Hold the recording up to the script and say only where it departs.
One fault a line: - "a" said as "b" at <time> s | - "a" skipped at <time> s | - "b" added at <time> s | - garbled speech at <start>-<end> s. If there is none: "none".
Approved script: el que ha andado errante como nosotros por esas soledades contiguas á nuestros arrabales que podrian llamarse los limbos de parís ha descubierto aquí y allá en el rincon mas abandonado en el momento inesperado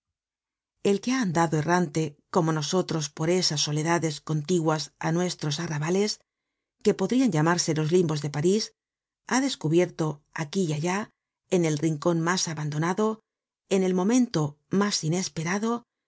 - "mas" added at 14.8 s